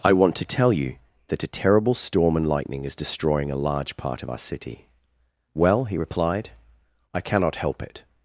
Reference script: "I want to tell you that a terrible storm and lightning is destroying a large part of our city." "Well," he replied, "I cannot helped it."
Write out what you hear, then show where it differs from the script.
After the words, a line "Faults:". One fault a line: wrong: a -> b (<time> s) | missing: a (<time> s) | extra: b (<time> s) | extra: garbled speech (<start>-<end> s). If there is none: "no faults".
"I want to tell you that a terrible storm and lightning is destroying a large part of our city." "Well," he replied, "I cannot help it."
Faults:
wrong: helped -> help (7.6 s)